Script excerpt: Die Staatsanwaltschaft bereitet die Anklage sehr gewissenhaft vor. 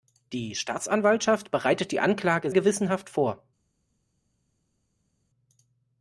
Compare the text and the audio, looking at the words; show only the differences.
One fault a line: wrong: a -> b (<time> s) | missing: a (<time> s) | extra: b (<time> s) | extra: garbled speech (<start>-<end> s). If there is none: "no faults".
missing: sehr (2.5 s)